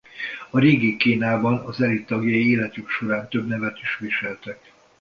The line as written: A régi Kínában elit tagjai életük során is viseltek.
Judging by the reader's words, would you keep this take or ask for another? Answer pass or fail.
fail